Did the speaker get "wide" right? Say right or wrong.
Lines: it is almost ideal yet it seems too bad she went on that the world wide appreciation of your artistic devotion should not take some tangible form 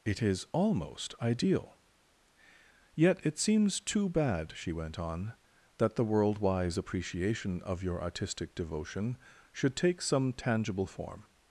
wrong